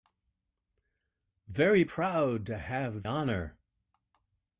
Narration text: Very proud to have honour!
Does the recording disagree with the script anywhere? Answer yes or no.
no